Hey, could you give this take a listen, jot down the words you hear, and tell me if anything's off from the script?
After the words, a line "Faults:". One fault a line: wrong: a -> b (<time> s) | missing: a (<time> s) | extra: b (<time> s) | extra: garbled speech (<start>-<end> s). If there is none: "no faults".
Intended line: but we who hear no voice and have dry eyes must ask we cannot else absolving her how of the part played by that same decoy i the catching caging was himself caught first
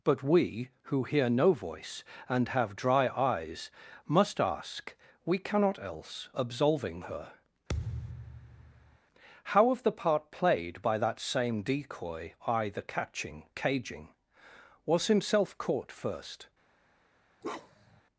but we who hear no voice and have dry eyes must ask we cannot else absolving her how of the part played by that same decoy i the catching caging was himself caught first
Faults:
no faults